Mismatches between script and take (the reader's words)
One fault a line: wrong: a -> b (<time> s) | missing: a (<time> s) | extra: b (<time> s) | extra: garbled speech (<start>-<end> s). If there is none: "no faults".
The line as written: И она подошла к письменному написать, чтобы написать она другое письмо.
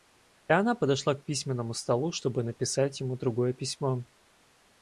wrong: написать -> столу (1.7 s)
wrong: она -> ему (3.0 s)